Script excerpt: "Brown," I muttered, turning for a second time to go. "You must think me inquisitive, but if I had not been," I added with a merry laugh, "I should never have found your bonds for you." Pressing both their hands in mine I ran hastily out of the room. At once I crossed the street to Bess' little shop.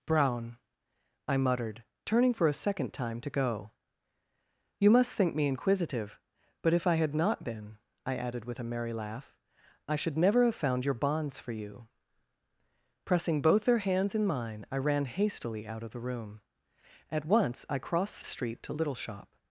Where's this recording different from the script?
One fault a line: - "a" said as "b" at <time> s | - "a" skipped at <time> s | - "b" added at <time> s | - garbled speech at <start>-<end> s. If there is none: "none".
- "Bess" skipped at 18.7 s